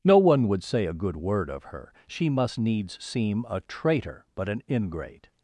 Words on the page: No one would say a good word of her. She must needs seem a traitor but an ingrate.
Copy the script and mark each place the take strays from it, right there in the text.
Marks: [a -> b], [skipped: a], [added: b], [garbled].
No one would say a good word of her. She must needs seem a traitor but an ingrate.